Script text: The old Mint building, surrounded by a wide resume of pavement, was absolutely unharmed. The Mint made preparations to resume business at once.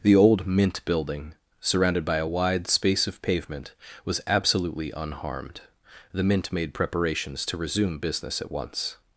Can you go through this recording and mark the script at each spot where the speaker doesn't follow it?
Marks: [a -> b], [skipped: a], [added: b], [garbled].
The old Mint building, surrounded by a wide [resume -> space] of pavement, was absolutely unharmed. The Mint made preparations to resume business at once.